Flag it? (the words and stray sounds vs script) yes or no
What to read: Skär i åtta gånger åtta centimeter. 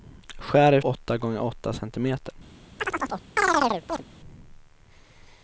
yes